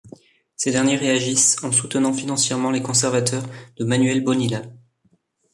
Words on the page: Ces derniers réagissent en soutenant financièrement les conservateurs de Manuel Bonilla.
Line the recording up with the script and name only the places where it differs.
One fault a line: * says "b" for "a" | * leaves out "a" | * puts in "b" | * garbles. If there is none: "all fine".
all fine